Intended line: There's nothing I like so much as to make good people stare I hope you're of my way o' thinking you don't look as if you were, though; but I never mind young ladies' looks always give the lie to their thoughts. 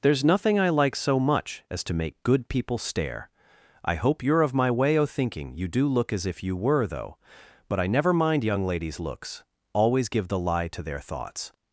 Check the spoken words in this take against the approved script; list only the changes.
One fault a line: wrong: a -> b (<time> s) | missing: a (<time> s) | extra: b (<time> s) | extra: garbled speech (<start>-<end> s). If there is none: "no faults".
wrong: don't -> do (5.7 s)